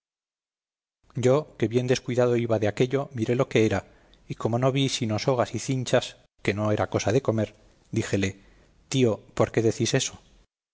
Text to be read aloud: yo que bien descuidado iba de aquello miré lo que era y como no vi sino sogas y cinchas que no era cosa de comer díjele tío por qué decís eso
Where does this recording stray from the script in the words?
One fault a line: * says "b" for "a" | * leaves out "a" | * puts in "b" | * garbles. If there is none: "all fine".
all fine